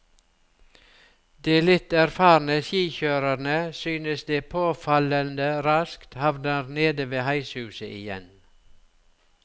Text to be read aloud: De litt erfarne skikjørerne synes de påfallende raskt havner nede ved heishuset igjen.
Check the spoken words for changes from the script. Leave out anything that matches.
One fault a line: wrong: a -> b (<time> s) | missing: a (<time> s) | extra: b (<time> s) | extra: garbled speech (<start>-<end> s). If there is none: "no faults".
no faults